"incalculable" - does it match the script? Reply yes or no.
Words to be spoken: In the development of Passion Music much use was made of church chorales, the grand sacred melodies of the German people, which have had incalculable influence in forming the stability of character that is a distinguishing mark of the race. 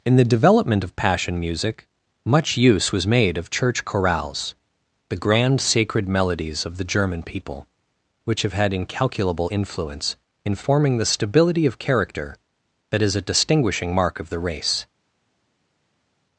yes